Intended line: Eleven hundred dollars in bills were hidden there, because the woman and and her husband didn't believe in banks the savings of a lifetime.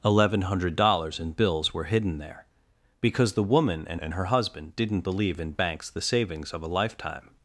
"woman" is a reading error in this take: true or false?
false